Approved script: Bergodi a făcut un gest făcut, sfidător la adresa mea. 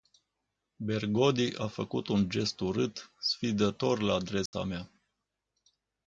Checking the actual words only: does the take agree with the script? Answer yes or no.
no